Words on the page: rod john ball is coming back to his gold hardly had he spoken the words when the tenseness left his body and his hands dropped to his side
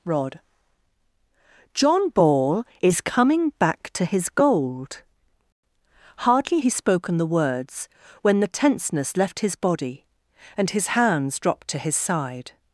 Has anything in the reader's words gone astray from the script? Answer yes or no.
yes